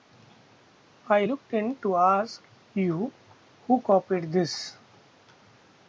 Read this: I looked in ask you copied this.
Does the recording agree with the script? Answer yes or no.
no